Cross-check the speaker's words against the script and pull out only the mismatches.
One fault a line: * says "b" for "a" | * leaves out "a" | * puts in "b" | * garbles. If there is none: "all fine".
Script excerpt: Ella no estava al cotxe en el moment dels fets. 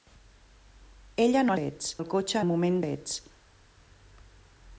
* says "fets" for "estava"
* leaves out "en"
* leaves out "dels"